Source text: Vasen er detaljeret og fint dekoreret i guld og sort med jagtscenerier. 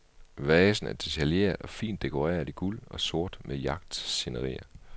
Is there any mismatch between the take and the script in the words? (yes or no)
no